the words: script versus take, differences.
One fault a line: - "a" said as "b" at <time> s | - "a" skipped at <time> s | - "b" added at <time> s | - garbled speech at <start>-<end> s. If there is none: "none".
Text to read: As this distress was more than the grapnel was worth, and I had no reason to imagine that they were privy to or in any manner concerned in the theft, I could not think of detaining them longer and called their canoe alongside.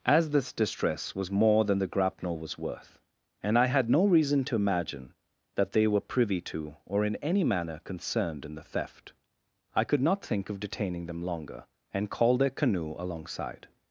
none